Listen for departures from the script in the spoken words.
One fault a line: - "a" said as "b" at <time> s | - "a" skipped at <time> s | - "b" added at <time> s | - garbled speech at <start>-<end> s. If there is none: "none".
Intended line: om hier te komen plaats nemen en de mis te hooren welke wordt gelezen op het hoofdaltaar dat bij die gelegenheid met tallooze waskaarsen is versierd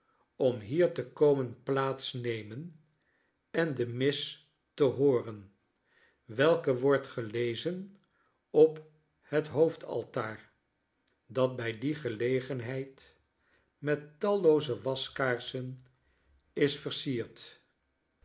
none